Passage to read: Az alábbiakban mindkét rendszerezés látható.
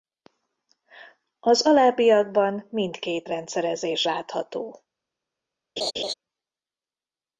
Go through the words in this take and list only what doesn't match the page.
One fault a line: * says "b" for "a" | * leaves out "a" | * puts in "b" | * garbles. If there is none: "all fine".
all fine